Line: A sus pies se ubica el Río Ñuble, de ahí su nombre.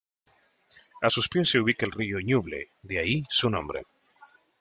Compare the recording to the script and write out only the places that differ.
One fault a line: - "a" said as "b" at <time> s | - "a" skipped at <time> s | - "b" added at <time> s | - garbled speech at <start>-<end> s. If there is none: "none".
none